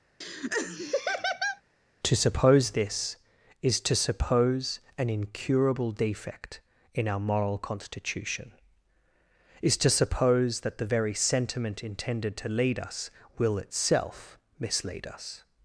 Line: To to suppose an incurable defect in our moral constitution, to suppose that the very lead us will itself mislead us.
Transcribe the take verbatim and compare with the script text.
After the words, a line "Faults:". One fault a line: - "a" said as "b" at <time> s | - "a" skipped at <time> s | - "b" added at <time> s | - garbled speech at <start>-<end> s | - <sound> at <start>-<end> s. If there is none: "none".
To suppose this, is to suppose an incurable defect in our moral constitution, is to suppose that the very sentiment intended to lead us will itself mislead us.
Faults:
- laugh at 0.2-1.6 s
- "suppose this is" added at 2.2 s
- "is" added at 9.6 s
- "sentiment intended to" added at 11.1 s